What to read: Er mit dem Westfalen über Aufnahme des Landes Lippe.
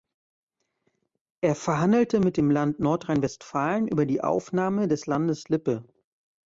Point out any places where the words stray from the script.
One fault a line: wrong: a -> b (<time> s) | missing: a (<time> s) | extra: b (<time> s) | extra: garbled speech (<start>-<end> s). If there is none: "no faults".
extra: verhandelte (1.5 s)
extra: Land Nordrhein (2.5 s)
extra: die (4.1 s)